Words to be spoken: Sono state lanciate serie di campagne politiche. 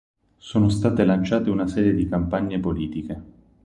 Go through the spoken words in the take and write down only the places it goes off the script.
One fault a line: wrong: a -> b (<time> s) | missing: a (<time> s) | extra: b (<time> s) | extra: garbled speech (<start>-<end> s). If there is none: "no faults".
extra: una (1.5 s)